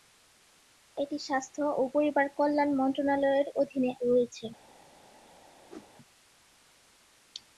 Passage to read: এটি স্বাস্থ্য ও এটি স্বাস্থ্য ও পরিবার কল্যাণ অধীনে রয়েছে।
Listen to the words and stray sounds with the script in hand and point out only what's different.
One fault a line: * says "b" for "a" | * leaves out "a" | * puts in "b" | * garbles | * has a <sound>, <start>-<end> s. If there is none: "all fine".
* leaves out "এটি স্বাস্থ্য ও"
* puts in "মন্ত্রণালয়ের"
* has a whoosh, 5.7-5.9 s